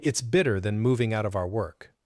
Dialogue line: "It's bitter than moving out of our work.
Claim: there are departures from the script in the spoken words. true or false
false